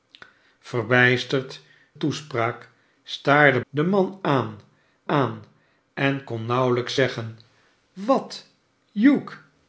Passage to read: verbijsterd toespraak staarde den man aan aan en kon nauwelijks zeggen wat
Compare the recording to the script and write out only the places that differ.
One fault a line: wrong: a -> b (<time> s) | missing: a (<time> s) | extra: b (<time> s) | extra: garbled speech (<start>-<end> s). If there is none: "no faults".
no faults